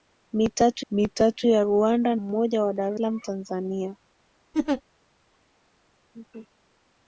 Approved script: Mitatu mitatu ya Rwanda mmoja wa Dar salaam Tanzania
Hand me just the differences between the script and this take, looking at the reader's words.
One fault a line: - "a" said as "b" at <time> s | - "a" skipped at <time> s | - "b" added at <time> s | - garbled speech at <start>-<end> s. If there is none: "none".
none